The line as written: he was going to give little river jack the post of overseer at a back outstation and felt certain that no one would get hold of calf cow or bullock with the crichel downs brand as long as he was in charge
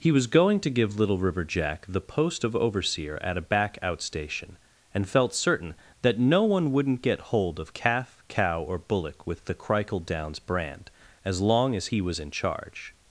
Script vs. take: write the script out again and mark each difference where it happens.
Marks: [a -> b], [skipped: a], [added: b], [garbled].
he was going to give little river jack the post of overseer at a back outstation and felt certain that no one [would -> wouldn't] get hold of calf cow or bullock with the crichel downs brand as long as he was in charge